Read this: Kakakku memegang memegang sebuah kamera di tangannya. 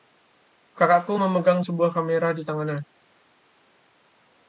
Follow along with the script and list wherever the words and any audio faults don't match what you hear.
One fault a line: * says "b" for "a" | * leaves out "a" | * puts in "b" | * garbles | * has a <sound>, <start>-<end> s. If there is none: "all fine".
* leaves out "memegang"